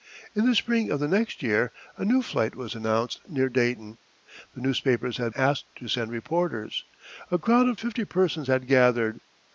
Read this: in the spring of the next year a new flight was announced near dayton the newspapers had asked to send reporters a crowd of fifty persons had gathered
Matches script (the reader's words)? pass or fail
pass